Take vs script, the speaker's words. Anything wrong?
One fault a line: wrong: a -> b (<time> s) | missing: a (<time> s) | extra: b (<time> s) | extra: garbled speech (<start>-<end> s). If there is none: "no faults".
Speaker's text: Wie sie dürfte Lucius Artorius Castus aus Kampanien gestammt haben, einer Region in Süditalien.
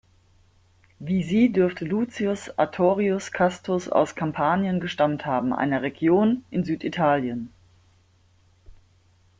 no faults